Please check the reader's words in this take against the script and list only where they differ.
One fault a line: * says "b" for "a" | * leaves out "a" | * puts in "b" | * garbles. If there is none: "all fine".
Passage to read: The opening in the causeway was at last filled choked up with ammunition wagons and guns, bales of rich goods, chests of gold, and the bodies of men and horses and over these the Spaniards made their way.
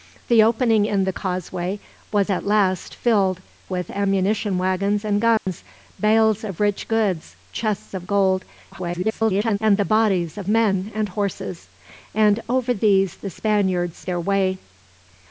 * leaves out "choked up"
* garbles
* leaves out "made"